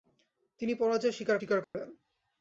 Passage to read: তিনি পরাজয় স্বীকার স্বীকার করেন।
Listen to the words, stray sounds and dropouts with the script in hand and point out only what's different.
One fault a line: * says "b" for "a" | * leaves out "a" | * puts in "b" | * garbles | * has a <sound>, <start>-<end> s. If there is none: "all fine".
* has a dropout, 1.6-1.7 s